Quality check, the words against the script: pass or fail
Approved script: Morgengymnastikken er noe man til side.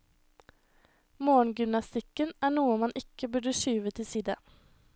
fail